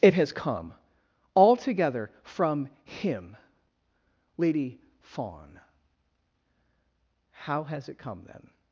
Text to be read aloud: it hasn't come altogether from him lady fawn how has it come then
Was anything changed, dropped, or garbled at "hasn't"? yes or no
yes